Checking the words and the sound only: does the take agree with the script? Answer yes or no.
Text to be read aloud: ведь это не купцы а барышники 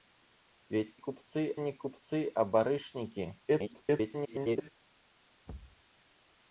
no